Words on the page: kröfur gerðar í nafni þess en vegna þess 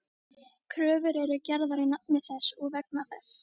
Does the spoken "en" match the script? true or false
false